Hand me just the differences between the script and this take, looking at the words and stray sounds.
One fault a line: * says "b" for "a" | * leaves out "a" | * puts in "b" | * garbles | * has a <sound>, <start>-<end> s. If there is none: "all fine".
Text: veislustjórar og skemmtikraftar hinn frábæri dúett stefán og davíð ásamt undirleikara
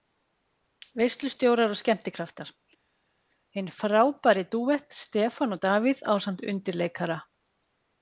all fine